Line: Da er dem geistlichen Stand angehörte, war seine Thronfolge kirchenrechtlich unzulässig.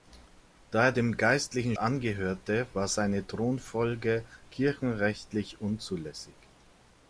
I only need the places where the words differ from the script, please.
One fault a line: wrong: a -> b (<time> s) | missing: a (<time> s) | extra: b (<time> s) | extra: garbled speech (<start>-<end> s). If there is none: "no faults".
missing: Stand (1.8 s)